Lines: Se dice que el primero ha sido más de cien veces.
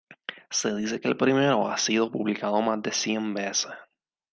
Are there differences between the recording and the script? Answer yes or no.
yes